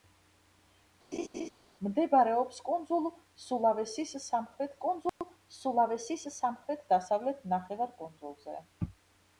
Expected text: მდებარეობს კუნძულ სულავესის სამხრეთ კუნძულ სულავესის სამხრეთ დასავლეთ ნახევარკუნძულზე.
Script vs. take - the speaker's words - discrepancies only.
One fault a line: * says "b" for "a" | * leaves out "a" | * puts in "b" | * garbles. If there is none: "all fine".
all fine